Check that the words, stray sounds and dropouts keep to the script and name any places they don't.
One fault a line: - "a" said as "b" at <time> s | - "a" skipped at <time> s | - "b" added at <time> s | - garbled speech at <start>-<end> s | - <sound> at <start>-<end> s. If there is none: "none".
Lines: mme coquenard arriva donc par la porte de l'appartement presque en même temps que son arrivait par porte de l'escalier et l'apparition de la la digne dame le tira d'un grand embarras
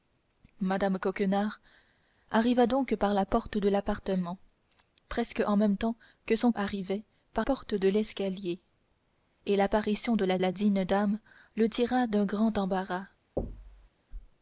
- thud at 13.4-13.9 s